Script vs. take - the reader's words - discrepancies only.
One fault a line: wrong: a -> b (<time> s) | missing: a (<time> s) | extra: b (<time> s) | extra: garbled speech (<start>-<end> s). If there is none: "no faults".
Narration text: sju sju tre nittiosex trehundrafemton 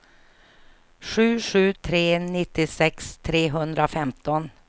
no faults